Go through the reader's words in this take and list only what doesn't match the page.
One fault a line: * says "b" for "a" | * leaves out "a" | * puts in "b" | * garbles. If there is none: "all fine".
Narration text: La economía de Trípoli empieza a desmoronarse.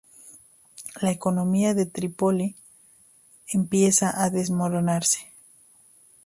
all fine